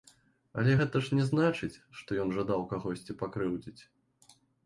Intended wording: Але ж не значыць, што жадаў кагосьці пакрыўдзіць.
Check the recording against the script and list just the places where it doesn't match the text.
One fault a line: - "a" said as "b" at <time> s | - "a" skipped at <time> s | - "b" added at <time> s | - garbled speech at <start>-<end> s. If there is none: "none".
- "гэта" added at 0.8 s
- "ён" added at 2.2 s